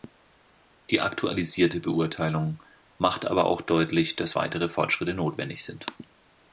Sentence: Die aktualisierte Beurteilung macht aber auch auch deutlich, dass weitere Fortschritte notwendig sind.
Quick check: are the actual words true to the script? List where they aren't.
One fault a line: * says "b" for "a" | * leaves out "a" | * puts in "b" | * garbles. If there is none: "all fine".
* leaves out "auch"